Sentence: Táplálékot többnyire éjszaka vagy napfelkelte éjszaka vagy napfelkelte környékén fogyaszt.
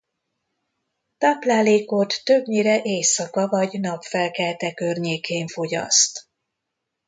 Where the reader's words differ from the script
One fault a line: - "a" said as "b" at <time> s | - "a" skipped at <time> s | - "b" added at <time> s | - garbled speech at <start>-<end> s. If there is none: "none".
- "éjszaka vagy napfelkelte" skipped at 4.7 s